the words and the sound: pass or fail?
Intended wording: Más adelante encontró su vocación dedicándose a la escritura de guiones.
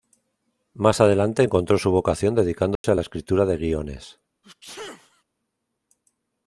fail